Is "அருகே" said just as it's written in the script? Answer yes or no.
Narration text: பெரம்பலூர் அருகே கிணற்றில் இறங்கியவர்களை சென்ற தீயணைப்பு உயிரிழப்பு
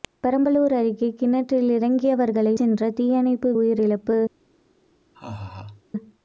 yes